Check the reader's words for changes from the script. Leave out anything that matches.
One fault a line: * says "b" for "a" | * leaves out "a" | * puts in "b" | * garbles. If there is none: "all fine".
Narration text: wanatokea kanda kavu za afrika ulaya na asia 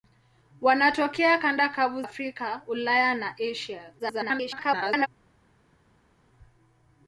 * leaves out "za"
* garbles